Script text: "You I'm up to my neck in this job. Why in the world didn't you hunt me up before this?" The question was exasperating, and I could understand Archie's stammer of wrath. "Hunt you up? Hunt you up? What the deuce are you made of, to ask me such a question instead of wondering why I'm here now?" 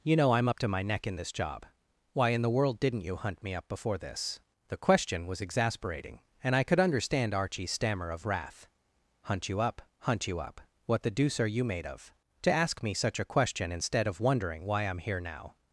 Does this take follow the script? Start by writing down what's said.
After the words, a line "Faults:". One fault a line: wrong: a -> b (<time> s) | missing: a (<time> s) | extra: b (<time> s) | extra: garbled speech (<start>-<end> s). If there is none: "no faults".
"You know I'm up to my neck in this job. Why in the world didn't you hunt me up before this?" The question was exasperating, and I could understand Archie's stammer of wrath. "Hunt you up? Hunt you up? What the deuce are you made of, to ask me such a question instead of wondering why I'm here now?"
Faults:
extra: know (0.1 s)